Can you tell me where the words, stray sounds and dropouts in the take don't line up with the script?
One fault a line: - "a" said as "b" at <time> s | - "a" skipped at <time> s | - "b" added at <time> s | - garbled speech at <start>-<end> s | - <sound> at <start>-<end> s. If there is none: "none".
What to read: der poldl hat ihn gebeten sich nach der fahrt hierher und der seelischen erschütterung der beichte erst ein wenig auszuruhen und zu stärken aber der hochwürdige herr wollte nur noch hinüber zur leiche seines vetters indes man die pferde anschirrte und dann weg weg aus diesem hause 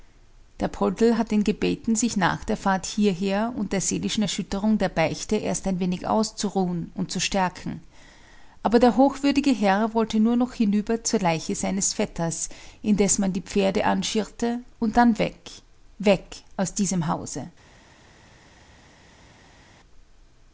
none